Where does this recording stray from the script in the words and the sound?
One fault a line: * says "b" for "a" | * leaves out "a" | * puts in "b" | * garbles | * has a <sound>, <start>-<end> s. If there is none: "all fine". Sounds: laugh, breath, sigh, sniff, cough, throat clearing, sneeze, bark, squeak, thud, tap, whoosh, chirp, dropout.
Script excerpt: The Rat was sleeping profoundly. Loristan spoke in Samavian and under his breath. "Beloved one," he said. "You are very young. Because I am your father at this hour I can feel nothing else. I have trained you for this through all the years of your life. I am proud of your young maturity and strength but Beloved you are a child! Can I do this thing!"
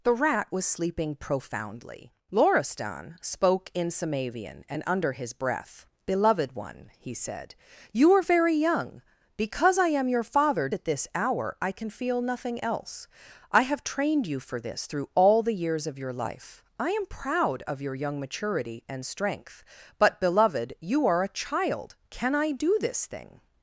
all fine